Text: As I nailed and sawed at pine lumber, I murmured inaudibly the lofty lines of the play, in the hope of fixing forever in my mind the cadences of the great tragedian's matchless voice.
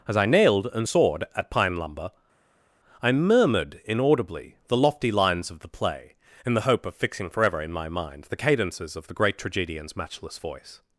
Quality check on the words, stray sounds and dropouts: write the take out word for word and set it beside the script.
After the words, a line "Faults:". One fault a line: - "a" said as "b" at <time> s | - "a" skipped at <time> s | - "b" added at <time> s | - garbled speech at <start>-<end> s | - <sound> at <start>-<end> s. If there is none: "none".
As I nailed and sawed at pine lumber, I murmured inaudibly the lofty lines of the play, in the hope of fixing forever in my mind the cadences of the great tragedian's matchless voice.
Faults:
none